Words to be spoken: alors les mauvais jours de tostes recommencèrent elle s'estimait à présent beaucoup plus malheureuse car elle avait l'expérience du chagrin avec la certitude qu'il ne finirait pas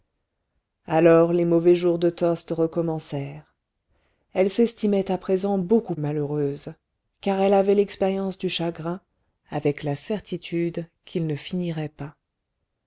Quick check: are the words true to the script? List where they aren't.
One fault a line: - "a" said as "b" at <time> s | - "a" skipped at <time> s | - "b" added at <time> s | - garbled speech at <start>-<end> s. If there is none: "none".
- "plus" skipped at 5.9 s